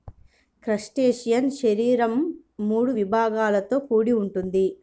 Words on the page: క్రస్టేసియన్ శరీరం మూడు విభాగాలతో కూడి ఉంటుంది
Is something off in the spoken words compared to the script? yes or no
no